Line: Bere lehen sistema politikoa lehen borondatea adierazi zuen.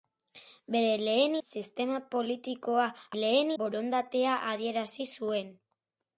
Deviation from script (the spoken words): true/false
false